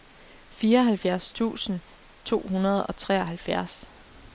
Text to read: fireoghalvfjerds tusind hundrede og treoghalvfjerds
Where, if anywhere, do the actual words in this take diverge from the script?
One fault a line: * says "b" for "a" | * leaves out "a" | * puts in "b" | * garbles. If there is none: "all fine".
* puts in "to"